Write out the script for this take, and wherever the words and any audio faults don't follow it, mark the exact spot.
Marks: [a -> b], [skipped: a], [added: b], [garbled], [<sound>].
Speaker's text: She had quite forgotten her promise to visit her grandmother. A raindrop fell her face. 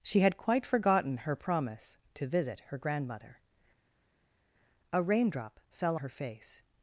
She had quite forgotten her promise to visit her grandmother. A raindrop fell her face.